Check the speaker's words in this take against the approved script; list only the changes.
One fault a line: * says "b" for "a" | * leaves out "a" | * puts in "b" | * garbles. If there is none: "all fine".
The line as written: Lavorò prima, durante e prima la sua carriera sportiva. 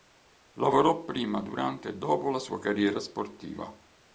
* says "dopo" for "prima"